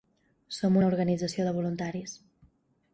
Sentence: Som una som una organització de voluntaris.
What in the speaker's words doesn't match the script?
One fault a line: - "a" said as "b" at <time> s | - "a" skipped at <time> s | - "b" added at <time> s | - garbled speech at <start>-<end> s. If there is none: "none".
- "som una" skipped at 0.9 s